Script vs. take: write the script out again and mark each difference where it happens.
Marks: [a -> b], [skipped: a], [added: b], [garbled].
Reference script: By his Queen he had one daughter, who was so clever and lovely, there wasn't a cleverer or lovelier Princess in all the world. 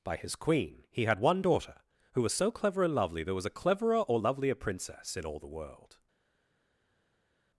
By his Queen he had one daughter, who was so clever and lovely, there [wasn't -> was] a cleverer or lovelier Princess in all the world.